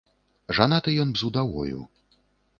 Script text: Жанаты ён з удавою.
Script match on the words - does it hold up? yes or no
yes